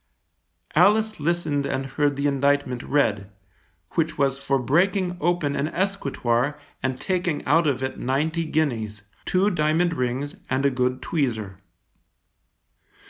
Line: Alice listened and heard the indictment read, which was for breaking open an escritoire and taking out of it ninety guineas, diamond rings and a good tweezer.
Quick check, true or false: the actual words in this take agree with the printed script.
false